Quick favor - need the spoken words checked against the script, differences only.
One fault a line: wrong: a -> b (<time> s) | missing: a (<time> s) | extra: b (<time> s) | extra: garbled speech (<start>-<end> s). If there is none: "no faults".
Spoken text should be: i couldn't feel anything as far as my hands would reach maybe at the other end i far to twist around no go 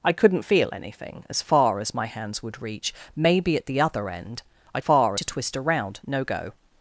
no faults